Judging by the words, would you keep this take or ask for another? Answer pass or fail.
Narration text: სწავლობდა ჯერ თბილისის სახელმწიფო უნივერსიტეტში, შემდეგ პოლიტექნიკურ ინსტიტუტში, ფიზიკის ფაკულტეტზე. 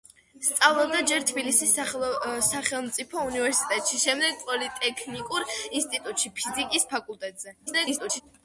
fail